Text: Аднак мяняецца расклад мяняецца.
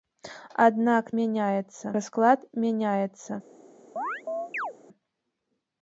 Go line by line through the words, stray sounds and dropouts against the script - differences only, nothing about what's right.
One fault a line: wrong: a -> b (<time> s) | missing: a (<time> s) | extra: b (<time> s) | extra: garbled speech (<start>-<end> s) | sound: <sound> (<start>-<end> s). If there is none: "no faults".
sound: chirp (4.0-4.7 s)